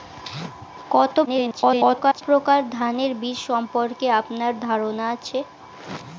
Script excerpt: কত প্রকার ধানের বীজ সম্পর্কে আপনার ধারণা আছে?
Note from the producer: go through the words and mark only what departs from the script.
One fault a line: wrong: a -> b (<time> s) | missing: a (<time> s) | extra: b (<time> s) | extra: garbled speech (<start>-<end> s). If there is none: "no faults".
extra: garbled speech (1.3-2.2 s)